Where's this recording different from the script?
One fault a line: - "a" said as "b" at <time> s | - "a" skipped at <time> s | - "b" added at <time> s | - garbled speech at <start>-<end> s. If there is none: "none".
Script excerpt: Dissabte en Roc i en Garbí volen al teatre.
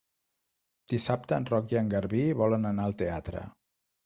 - "anar" added at 2.7 s